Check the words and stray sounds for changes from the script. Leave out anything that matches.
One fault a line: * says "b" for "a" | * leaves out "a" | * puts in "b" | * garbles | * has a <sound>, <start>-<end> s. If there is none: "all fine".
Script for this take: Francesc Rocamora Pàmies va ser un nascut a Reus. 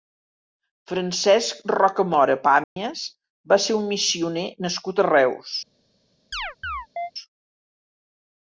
* has a dropout, 2.6-2.8 s
* puts in "missioner"
* has a chirp, 6.3-7.1 s